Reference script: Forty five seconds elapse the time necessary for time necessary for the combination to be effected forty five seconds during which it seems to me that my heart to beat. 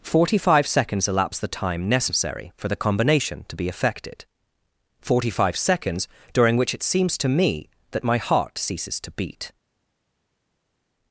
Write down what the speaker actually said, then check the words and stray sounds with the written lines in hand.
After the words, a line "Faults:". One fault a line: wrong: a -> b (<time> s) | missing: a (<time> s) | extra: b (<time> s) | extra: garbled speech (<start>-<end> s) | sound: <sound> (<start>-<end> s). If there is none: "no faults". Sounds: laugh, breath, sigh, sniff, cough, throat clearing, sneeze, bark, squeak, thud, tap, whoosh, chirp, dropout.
Forty five seconds elapse the time necessary for the combination to be effected forty five seconds during which it seems to me that my heart ceases to beat.
Faults:
missing: time necessary for (2.7 s)
extra: ceases (8.6 s)